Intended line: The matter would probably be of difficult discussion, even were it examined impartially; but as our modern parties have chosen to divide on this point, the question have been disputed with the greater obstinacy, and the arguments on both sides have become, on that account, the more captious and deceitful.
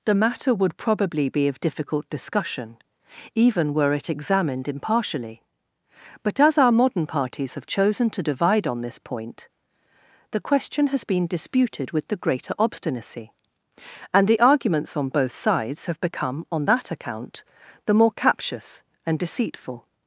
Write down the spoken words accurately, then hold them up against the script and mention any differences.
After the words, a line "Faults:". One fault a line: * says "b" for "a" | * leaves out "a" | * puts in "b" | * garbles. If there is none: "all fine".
The matter would probably be of difficult discussion, even were it examined impartially; but as our modern parties have chosen to divide on this point, the question has been disputed with the greater obstinacy, and the arguments on both sides have become, on that account, the more captious and deceitful.
Faults:
* says "has" for "have"